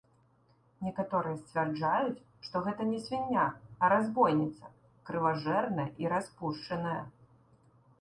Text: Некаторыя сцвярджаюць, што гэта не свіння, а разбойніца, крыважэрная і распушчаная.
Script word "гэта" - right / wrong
right